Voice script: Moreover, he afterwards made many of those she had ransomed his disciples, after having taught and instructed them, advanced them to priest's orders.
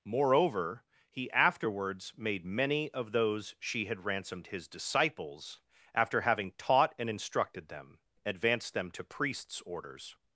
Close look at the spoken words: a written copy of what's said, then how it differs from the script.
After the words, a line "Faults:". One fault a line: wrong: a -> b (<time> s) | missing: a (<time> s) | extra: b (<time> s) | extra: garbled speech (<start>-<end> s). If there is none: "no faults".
Moreover, he afterwards made many of those she had ransomed his disciples, after having taught and instructed them, advanced them to priest's orders.
Faults:
no faults